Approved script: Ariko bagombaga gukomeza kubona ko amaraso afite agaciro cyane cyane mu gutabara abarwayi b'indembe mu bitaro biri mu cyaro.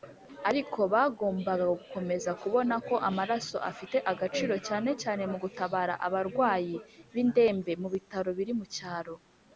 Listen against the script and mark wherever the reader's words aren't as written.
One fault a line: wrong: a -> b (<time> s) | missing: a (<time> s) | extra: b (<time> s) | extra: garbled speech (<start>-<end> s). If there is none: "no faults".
no faults